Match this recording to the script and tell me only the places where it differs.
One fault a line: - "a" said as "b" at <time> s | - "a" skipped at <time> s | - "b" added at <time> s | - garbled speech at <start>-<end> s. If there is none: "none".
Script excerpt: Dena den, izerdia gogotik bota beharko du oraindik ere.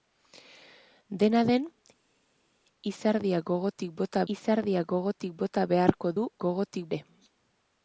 - "izerdia gogotik bota" added at 4.4 s
- "oraindik" said as "gogotik" at 6.5 s